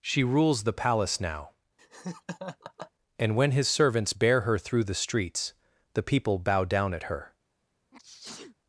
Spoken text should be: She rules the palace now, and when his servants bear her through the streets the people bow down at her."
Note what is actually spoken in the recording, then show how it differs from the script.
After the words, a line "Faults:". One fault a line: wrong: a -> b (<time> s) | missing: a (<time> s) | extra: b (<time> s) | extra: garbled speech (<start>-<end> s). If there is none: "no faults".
She rules the palace now, and when his servants bear her through the streets the people bow down at her."
Faults:
no faults